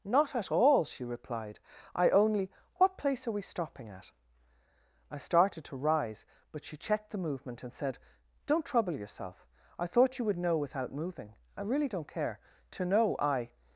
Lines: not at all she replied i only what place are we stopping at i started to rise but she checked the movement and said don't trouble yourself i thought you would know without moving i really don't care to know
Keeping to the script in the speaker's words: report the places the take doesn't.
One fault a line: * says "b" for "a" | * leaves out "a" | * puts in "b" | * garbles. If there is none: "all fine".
* puts in "i"